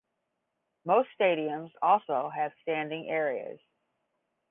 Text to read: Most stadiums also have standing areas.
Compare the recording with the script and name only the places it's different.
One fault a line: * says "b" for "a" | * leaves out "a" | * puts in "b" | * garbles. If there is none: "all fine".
all fine